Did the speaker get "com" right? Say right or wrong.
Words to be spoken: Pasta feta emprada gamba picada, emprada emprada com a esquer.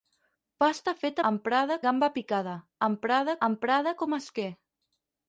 right